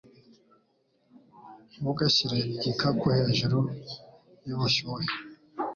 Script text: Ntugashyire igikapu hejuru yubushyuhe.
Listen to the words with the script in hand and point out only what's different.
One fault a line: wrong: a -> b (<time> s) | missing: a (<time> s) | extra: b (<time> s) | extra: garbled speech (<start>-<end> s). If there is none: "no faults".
no faults